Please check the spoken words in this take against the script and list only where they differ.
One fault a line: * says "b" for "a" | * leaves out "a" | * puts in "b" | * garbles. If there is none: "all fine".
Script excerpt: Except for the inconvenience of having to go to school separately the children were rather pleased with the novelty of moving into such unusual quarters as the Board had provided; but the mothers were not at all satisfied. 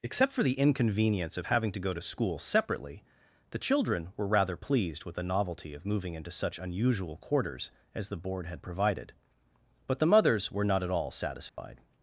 all fine